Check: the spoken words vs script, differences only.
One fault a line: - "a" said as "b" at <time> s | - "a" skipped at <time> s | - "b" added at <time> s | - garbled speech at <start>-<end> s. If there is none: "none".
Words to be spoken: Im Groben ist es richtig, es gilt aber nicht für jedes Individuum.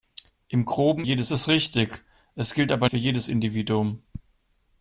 - "ist" said as "jedes" at 1.0 s
- "nicht" skipped at 2.9 s